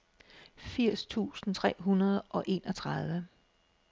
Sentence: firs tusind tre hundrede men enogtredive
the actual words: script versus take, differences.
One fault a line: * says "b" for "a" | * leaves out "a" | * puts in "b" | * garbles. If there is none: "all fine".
* says "og" for "men"